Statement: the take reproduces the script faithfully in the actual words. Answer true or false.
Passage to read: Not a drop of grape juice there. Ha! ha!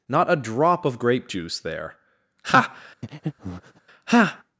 true